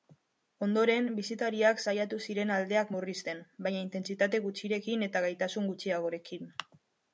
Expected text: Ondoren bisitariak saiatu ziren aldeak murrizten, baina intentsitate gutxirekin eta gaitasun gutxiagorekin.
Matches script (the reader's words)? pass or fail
pass